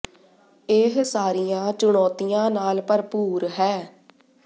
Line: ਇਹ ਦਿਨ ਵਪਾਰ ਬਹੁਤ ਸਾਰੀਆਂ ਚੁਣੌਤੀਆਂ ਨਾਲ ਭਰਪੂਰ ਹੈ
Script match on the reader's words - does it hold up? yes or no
no